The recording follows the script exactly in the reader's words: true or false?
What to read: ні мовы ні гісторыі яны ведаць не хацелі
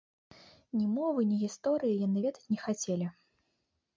true